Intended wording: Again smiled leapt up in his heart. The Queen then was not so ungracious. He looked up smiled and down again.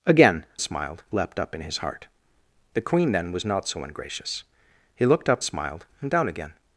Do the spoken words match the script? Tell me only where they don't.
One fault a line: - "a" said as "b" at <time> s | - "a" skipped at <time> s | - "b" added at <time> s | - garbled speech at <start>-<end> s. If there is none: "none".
none